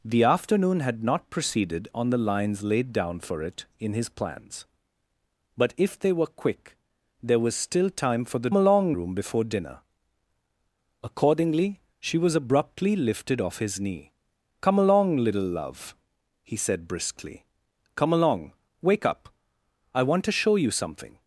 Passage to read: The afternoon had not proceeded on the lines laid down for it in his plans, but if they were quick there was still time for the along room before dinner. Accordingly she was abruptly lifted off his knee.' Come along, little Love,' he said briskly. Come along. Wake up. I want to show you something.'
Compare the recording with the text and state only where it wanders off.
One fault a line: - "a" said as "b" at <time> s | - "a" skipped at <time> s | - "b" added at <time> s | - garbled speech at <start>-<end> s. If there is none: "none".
none